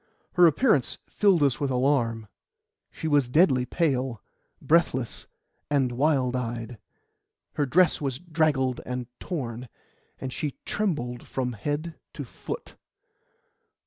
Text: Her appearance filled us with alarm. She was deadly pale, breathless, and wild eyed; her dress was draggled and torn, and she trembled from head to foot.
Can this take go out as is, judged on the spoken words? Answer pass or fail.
pass